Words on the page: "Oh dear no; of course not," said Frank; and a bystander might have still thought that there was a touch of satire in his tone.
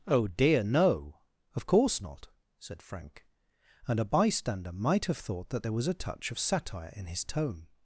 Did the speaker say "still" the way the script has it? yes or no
no